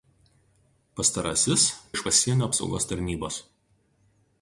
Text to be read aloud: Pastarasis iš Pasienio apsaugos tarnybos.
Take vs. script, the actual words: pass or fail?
pass